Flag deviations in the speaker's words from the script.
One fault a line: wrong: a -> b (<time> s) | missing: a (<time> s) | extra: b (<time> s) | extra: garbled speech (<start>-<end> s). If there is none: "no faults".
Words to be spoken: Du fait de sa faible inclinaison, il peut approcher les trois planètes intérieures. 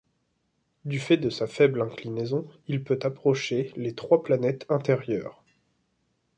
no faults